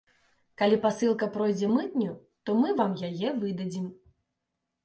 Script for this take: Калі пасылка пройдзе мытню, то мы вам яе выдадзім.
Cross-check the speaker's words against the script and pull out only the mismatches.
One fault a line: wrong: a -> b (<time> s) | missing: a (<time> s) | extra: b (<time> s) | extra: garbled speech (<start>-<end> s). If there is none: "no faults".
no faults